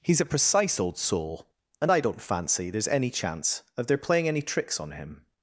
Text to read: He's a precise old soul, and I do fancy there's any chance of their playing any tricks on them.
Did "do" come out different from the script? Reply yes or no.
yes